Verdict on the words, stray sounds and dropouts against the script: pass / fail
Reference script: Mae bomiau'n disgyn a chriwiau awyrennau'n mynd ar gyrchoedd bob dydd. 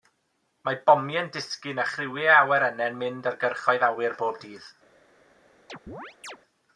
fail